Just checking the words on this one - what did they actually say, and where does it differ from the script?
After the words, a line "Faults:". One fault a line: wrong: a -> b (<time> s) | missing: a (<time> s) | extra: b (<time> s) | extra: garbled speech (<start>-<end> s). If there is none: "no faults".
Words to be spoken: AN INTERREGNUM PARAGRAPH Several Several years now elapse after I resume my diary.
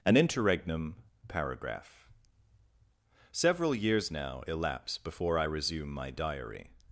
AN INTERREGNUM PARAGRAPH Several years now elapse before I resume my diary.
Faults:
missing: Several (3.8 s)
wrong: after -> before (5.0 s)